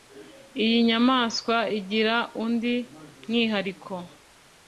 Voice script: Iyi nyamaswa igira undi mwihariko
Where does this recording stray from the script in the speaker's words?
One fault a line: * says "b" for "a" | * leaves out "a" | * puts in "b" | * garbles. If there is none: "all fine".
all fine